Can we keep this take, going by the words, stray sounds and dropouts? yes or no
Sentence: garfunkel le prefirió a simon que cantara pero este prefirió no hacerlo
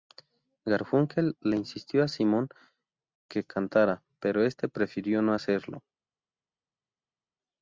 no